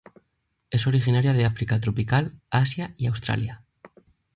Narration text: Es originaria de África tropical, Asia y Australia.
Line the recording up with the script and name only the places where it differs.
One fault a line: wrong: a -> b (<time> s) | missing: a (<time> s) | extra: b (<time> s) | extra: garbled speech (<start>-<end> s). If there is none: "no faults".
no faults